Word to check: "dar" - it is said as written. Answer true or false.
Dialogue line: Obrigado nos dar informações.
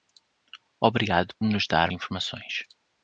true